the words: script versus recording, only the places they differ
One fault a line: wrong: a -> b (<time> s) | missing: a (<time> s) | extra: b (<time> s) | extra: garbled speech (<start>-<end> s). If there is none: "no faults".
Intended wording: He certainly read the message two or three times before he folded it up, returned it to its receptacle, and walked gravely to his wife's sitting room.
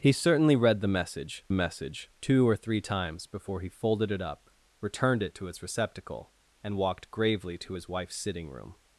extra: message (1.5 s)